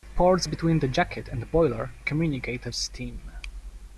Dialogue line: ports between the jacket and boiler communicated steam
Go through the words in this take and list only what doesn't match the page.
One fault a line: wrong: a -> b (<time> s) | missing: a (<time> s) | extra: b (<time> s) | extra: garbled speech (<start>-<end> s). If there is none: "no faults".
no faults